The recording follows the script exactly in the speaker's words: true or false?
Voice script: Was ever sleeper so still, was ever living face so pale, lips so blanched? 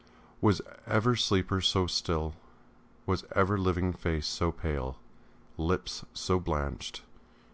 true